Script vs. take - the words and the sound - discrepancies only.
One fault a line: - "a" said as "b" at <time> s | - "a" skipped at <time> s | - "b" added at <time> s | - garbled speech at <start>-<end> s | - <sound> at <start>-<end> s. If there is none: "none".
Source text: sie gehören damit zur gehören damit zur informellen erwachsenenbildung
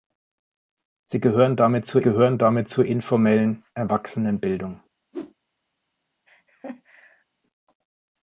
- whoosh at 5.1-5.3 s
- laugh at 6.3-7.2 s